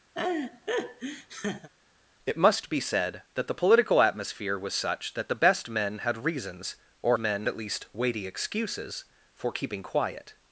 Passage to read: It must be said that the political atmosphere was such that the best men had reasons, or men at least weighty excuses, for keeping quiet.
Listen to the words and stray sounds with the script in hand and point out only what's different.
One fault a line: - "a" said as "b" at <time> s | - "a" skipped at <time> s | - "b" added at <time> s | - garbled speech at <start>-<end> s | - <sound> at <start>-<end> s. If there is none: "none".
- laugh at 0.1-1.7 s